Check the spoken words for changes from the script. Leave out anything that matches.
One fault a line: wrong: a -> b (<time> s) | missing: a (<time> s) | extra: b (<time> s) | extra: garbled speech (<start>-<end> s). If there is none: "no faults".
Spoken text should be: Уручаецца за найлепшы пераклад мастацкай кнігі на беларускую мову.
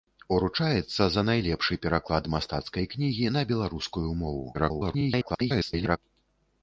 extra: garbled speech (4.5-6.0 s)